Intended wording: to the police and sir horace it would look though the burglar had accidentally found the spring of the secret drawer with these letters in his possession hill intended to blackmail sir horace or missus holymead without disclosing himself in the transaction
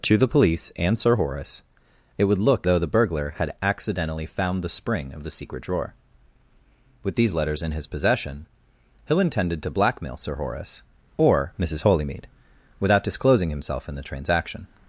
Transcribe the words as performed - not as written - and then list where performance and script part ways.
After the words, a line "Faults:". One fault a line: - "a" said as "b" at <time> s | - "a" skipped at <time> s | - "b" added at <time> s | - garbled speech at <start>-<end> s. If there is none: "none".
to the police and sir horace it would look though the burglar had accidentally found the spring of the secret drawer with these letters in his possession hill intended to blackmail sir horace or missus holymead without disclosing himself in the transaction
Faults:
none